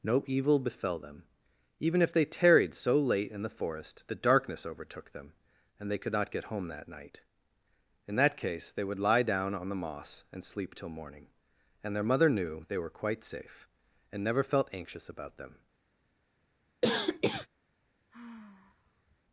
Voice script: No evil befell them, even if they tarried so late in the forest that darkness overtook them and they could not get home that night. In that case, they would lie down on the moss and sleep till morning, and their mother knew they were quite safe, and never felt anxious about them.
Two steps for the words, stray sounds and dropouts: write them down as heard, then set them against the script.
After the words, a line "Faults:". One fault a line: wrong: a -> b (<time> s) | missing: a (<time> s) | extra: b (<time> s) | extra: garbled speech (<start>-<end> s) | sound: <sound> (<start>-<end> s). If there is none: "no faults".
No evil befell them, even if they tarried so late in the forest the darkness overtook them and they could not get home that night. In that case, they would lie down on the moss and sleep till morning, and their mother knew they were quite safe, and never felt anxious about them.
Faults:
wrong: that -> the (4.1 s)
sound: cough (16.8-17.5 s)
sound: sigh (18.1-19.2 s)